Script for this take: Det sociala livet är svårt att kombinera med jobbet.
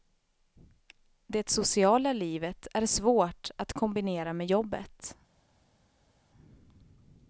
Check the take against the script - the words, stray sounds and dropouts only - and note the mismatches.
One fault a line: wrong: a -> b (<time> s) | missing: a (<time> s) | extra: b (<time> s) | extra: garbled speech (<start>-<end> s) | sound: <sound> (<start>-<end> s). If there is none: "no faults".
no faults